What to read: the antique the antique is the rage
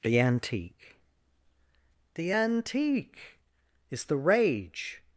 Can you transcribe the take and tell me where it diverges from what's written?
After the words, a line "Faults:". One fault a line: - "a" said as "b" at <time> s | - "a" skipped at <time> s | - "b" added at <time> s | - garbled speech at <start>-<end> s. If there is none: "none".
the antique the antique is the rage
Faults:
none